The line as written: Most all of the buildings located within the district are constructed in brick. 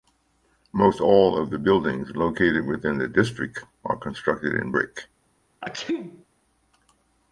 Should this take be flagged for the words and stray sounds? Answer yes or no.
yes